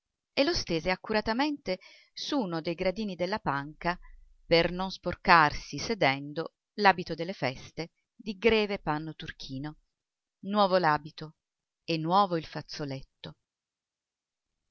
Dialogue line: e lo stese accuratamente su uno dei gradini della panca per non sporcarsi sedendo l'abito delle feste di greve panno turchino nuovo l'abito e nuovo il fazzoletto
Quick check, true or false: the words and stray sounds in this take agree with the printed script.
true